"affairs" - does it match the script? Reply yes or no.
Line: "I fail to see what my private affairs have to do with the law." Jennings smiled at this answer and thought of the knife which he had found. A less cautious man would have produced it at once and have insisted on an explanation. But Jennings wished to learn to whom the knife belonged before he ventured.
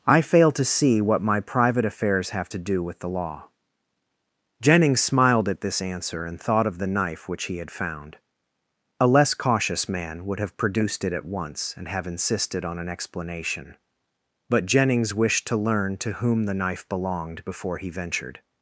yes